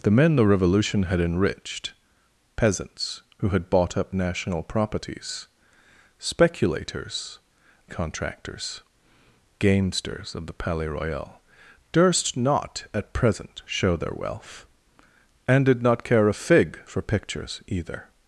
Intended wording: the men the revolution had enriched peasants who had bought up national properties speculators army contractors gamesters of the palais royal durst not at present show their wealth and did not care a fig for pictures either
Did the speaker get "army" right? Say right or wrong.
wrong